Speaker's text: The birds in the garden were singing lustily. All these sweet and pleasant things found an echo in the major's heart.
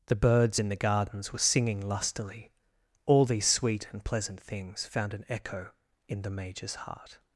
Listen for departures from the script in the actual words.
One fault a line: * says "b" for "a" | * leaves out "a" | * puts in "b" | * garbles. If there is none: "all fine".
* says "gardens" for "garden"